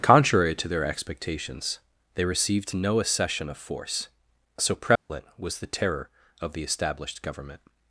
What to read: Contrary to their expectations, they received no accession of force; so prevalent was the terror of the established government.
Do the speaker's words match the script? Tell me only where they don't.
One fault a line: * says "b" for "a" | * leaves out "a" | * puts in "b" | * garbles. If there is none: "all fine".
all fine